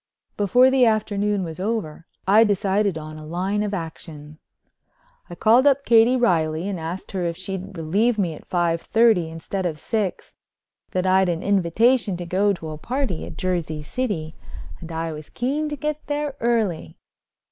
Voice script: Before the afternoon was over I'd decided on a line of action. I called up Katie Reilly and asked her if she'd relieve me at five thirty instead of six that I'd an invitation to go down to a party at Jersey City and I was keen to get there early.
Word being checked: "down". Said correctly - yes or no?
no